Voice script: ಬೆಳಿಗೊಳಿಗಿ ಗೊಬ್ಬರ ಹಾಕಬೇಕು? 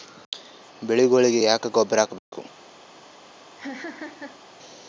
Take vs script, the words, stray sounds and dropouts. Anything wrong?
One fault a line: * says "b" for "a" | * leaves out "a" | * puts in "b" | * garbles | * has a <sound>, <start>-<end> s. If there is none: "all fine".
* puts in "ಯಾಕ"
* has a dropout, 2.2-2.3 s
* has a laugh, 3.6-4.4 s